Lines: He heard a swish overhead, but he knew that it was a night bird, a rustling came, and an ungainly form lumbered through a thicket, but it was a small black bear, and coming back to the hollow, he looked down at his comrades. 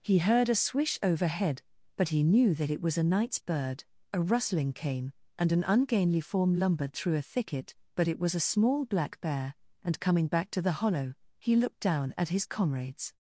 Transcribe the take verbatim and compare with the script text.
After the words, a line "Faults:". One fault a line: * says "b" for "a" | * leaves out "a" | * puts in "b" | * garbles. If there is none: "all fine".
He heard a swish overhead, but he knew that it was a nights bird, a rustling came, and an ungainly form lumbered through a thicket, but it was a small black bear, and coming back to the hollow, he looked down at his comrades.
Faults:
* says "nights" for "night"